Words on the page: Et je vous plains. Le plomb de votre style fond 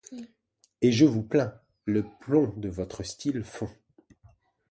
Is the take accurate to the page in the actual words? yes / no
yes